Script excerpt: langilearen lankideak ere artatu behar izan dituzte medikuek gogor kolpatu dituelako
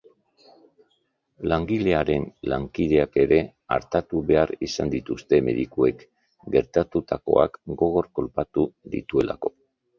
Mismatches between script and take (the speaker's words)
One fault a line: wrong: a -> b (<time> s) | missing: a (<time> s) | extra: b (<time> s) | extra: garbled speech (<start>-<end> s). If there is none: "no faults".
extra: gertatutakoak (6.6 s)